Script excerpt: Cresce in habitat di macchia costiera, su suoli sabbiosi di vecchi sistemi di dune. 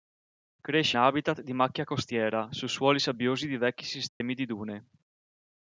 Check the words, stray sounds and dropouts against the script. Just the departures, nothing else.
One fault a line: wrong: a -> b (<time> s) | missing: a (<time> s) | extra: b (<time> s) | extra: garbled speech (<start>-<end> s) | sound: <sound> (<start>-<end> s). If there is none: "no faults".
missing: in (1.0 s)
sound: dropout (4.1-4.2 s)